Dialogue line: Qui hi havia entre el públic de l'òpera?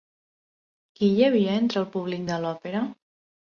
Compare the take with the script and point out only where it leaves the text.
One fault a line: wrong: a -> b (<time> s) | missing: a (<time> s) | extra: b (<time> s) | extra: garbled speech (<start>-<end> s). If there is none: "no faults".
no faults